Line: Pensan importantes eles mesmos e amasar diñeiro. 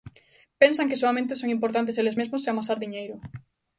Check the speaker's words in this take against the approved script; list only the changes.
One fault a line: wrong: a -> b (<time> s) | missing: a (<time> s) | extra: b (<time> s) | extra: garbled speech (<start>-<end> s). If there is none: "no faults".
extra: que soamente son (0.9 s)